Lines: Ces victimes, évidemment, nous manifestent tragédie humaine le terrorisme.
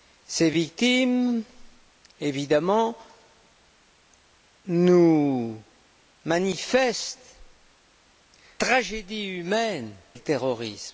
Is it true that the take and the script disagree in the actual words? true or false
false